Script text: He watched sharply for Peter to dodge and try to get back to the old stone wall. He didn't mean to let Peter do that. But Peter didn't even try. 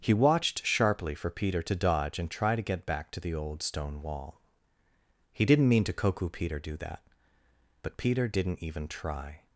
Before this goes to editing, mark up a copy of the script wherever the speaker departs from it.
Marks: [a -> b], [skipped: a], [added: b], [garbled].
He watched sharply for Peter to dodge and try to get back to the old stone wall. He didn't mean to [let -> koku] Peter do that. But Peter didn't even try.